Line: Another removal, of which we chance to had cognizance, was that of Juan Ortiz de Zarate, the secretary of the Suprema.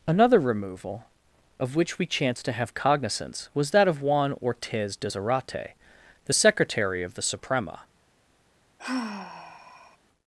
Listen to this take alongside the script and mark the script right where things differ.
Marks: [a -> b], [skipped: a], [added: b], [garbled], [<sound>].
Another removal, of which we chance to [had -> have] cognizance, was that of Juan Ortiz de Zarate, the secretary of the Suprema. [sigh]